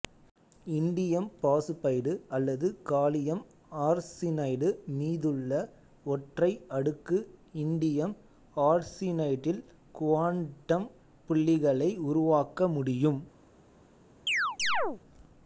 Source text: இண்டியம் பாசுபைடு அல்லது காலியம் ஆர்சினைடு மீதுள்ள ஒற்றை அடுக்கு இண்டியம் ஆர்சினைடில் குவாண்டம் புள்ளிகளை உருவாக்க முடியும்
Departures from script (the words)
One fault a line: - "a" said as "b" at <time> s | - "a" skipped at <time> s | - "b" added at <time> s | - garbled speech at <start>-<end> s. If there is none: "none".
none